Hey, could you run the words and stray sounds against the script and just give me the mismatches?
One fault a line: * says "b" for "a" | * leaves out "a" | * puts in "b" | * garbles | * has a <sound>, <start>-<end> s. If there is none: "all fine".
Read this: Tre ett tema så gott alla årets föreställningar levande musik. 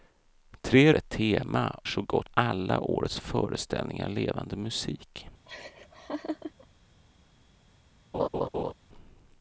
* has a laugh, 5.5-6.7 s
* has a laugh, 8.1-8.7 s